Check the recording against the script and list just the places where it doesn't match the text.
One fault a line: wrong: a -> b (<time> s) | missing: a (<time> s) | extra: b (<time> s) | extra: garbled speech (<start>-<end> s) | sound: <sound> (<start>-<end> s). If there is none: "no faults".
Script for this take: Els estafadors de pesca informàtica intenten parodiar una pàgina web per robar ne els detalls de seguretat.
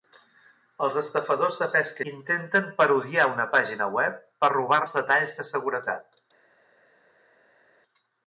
missing: informàtica (2.0 s)
missing: ne (4.8 s)